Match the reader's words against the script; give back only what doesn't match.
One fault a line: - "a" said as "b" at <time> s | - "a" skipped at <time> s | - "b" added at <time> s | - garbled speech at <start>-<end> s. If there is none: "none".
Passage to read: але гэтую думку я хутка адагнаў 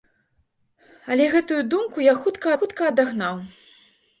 - "хутка" added at 2.6 s